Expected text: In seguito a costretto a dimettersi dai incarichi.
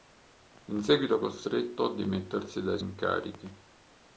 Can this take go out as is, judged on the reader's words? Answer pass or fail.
pass